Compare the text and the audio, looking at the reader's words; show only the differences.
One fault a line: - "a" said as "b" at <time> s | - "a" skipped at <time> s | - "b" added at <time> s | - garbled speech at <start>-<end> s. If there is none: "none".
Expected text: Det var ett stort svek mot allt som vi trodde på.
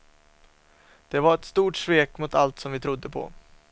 none